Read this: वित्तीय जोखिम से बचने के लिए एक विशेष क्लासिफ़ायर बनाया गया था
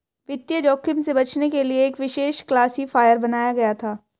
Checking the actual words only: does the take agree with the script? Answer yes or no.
yes